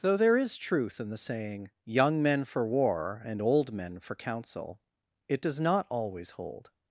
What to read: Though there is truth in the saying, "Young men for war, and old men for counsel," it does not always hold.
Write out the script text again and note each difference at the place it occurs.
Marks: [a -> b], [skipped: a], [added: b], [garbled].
Though there is truth in the saying, "Young men for war, and old men for counsel," it does not always hold.